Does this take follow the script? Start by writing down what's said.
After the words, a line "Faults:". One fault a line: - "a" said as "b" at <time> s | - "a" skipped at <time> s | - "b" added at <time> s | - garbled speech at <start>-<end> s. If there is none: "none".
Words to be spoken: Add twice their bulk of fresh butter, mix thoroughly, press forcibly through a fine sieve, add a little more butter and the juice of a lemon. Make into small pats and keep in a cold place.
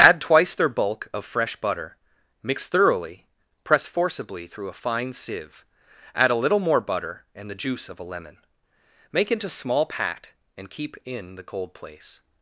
Add twice their bulk of fresh butter, mix thoroughly, press forcibly through a fine sieve, add a little more butter and the juice of a lemon. Make into small pat and keep in the cold place.
Faults:
- "pats" said as "pat" at 9.9 s
- "a" said as "the" at 11.3 s